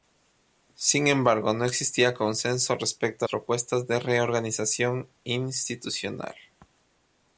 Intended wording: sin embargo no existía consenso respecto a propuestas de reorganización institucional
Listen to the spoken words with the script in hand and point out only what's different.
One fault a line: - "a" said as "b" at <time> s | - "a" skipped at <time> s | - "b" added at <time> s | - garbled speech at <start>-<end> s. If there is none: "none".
none